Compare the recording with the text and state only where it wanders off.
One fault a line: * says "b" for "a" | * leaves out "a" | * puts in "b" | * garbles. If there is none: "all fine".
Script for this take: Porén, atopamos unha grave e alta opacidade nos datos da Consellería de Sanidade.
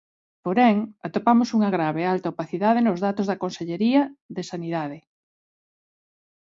all fine